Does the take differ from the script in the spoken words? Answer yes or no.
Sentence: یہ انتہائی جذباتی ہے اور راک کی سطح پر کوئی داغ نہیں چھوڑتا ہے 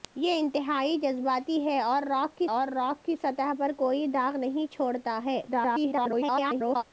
yes